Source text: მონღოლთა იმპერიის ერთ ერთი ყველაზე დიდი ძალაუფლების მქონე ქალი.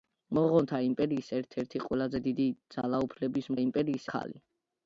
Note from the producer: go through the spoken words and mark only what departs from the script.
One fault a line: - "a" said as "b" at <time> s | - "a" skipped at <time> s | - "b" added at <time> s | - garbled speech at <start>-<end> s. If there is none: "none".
- "მქონე" said as "იმპერიის" at 3.6 s